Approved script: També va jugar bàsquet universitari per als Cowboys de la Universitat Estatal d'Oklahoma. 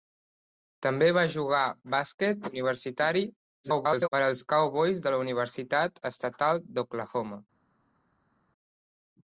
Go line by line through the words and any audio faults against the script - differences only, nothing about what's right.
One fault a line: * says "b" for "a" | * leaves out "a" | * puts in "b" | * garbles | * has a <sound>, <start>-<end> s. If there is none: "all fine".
* garbles